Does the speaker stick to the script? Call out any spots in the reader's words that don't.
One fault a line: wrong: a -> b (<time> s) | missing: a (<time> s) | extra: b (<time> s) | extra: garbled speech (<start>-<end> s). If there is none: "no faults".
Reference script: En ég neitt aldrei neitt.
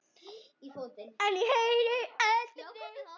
wrong: neitt -> heyri (1.5 s)